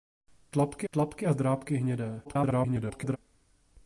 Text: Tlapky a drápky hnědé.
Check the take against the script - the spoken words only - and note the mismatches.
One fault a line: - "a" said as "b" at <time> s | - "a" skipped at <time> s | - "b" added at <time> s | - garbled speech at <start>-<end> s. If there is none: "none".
- "tlapky" added at 0.9 s
- garbled speech at 2.2-3.2 s